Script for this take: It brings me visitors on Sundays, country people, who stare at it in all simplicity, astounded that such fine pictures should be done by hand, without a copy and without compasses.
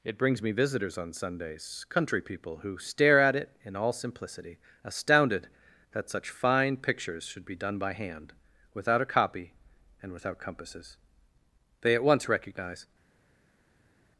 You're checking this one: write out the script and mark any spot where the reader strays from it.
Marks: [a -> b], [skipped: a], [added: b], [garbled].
It brings me visitors on Sundays, country people, who stare at it in all simplicity, astounded that such fine pictures should be done by hand, without a copy and without compasses. [added: They at once recognize]